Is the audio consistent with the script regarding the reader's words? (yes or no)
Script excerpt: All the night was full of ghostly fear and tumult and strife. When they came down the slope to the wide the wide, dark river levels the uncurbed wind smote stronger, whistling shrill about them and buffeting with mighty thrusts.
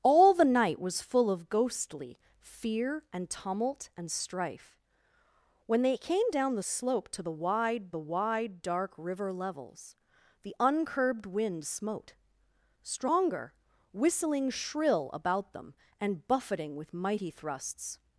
yes